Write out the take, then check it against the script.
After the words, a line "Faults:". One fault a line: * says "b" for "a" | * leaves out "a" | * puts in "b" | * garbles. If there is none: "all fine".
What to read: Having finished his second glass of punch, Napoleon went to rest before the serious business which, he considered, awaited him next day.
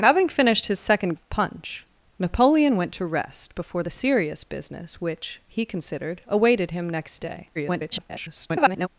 Having finished his second of punch, Napoleon went to rest before the serious business which, he considered, awaited him next day. [garbled]
Faults:
* leaves out "glass"
* garbles